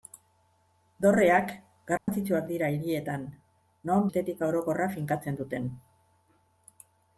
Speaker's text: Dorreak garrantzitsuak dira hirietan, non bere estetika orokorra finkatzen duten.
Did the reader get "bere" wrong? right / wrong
wrong